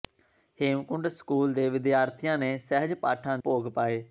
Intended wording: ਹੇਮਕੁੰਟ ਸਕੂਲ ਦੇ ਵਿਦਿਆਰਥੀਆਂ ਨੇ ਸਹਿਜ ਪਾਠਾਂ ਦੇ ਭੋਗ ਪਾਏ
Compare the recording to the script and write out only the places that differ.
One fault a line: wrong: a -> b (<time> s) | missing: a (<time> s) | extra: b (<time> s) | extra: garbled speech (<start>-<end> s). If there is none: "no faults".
missing: ਦੇ (3.4 s)